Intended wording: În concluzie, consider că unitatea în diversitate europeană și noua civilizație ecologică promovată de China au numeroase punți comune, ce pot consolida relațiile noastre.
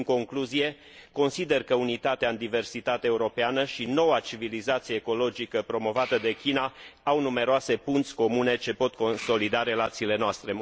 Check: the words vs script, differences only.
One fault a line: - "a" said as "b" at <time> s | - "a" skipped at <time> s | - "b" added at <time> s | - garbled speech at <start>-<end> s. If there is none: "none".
none